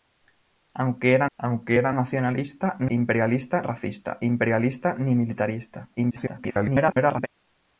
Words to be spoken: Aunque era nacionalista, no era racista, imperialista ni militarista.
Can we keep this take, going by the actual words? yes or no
no